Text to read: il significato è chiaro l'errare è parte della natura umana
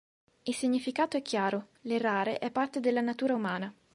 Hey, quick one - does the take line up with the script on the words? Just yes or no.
yes